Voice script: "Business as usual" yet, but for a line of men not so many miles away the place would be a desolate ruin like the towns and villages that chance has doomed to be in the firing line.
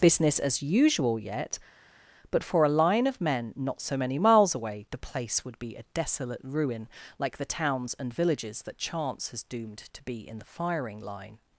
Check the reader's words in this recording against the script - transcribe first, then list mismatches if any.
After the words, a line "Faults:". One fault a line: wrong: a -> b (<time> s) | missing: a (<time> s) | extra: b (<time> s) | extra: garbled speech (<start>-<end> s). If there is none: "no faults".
"Business as usual" yet, but for a line of men not so many miles away the place would be a desolate ruin like the towns and villages that chance has doomed to be in the firing line.
Faults:
no faults